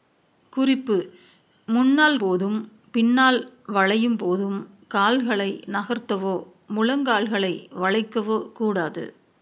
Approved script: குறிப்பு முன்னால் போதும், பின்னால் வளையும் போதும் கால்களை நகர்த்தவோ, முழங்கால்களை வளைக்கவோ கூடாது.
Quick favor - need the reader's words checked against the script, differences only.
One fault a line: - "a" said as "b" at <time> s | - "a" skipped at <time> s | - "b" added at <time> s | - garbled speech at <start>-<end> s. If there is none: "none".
none